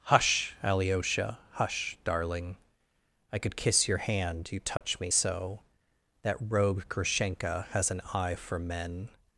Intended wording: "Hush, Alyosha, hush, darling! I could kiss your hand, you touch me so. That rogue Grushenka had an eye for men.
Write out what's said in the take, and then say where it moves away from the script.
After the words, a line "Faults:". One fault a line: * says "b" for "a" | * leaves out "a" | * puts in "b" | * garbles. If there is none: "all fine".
"Hush, Alyosha, hush, darling! I could kiss your hand, you touch me so. That rogue Grushenka has an eye for men.
Faults:
* says "has" for "had"